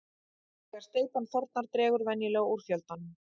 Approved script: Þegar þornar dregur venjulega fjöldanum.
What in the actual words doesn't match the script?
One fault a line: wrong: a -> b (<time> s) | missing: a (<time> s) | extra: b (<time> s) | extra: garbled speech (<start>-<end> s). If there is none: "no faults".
extra: steypan (0.8 s)
extra: úr (2.6 s)